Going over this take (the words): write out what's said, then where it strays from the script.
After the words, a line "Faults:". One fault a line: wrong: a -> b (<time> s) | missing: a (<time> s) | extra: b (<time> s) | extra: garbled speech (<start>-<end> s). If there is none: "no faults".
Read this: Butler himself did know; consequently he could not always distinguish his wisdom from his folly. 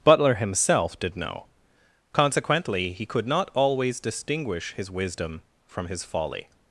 Butler himself did know; consequently he could not always distinguish his wisdom from his folly.
Faults:
no faults